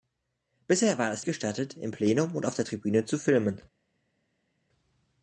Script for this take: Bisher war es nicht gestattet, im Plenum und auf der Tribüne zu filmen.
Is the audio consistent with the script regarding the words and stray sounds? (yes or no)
no